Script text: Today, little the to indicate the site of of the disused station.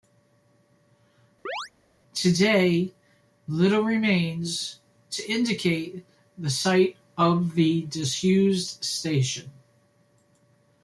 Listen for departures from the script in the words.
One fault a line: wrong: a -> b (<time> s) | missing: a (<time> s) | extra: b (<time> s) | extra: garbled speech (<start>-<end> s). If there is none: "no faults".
wrong: the -> remains (3.8 s)
missing: of (7.5 s)